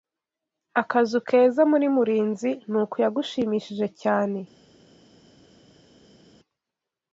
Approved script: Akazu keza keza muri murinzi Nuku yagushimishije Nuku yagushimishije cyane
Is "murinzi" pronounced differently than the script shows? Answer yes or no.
no